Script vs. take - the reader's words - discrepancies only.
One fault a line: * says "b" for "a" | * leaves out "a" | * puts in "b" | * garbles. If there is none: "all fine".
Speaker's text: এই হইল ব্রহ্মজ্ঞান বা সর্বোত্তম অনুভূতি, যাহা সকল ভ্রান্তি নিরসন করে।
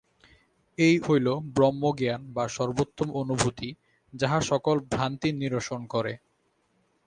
all fine